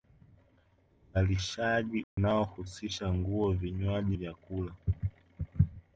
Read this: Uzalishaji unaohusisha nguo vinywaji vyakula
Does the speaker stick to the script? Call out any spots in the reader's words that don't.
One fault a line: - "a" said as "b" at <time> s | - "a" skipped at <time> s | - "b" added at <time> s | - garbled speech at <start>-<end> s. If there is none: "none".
none